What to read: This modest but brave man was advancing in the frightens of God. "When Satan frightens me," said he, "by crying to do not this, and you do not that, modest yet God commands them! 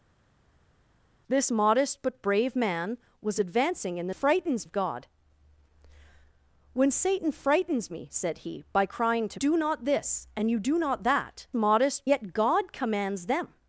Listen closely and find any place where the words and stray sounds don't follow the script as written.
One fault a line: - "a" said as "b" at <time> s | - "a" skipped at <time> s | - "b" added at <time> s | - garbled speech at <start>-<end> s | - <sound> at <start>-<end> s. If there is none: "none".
none